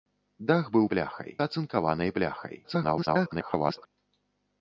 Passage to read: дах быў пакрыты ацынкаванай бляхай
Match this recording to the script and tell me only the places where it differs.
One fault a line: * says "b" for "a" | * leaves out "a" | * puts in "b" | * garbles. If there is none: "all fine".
* says "бляхай" for "пакрыты"
* garbles